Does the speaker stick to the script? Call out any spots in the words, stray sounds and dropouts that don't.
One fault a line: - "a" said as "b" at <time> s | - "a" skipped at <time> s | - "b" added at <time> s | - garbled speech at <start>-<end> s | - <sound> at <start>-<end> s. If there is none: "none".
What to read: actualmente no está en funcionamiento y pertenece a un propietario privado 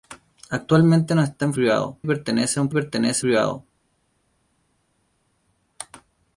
- "funcionamiento" said as "privado" at 1.5 s
- "propietario" said as "pertenece" at 2.7 s